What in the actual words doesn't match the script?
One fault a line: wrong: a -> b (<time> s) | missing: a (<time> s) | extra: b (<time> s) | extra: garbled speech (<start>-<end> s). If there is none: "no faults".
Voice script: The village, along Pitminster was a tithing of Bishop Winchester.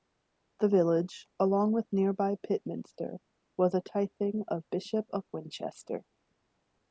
extra: with nearby (1.7 s)
extra: of (5.1 s)